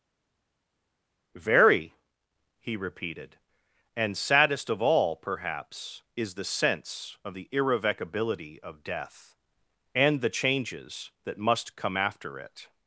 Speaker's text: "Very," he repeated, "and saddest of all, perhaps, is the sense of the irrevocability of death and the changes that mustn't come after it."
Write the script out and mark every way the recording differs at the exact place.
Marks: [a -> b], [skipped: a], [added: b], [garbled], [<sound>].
"Very," he repeated, "and saddest of all, perhaps, is the sense of the irrevocability of death and the changes that [mustn't -> must] come after it."